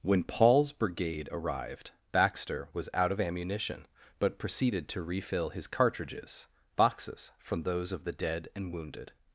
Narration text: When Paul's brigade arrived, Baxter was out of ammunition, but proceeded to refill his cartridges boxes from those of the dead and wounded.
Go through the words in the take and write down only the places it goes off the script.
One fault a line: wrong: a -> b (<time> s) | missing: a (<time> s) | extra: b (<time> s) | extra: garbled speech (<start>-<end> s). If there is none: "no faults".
no faults